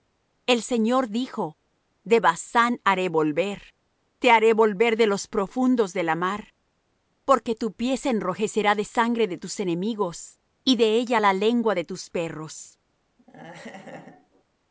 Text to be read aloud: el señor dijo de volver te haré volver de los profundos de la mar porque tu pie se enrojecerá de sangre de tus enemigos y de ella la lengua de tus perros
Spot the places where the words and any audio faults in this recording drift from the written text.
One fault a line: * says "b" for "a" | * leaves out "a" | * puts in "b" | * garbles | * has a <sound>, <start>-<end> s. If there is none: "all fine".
* puts in "basán haré"
* has a laugh, 13.2-14.4 s